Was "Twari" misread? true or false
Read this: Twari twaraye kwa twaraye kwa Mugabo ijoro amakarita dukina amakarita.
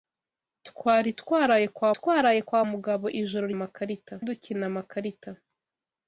false